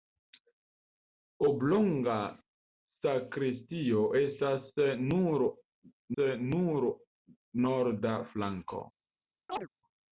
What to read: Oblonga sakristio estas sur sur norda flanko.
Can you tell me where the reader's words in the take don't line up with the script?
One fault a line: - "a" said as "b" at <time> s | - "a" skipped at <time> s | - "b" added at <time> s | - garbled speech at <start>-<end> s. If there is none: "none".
none